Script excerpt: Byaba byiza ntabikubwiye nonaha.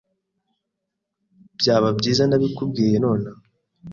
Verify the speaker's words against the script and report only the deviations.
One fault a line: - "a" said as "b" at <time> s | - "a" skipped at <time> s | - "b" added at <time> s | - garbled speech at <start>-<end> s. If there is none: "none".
none